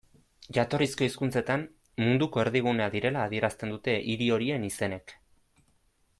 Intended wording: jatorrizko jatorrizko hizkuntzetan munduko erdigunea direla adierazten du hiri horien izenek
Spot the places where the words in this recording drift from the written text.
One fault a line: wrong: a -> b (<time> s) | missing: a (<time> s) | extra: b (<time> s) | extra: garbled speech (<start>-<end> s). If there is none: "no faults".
missing: jatorrizko (1.1 s)
wrong: du -> dute (3.8 s)